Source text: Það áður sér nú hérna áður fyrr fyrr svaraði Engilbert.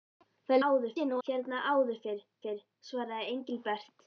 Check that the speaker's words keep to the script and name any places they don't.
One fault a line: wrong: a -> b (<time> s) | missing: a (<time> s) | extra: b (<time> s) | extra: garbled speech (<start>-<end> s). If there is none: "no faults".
no faults